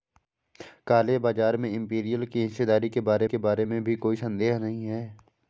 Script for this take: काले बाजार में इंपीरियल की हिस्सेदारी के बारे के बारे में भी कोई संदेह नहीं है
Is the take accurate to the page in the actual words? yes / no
yes